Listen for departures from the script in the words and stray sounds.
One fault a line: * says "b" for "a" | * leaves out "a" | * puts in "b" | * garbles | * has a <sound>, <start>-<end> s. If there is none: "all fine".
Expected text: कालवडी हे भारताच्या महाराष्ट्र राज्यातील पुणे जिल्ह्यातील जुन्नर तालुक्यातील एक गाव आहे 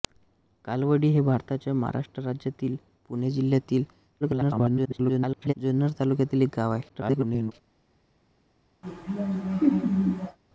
* garbles
* garbles
* has a laugh, 8.8-10.4 s